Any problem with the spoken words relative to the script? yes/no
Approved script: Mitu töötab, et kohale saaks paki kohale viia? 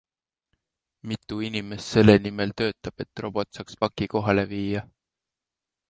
yes